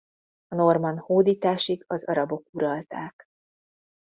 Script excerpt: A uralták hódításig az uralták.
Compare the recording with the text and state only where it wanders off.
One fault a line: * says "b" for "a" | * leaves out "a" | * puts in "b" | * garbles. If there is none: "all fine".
* says "normann" for "uralták"
* puts in "arabok"